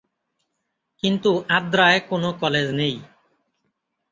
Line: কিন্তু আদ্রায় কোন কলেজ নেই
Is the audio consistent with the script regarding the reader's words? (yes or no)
yes